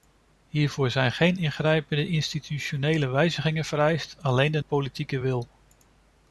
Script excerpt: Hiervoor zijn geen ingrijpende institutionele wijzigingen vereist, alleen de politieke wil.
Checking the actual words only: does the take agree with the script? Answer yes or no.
yes